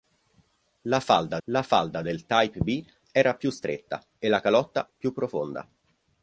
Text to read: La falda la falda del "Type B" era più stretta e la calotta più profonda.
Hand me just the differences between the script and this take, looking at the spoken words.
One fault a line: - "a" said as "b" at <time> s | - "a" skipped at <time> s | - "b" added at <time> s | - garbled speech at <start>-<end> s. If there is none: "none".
none